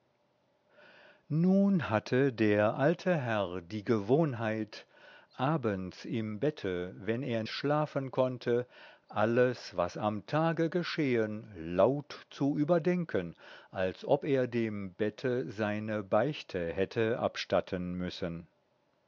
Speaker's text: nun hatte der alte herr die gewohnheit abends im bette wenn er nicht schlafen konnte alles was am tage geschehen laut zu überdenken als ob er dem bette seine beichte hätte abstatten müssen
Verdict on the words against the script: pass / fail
fail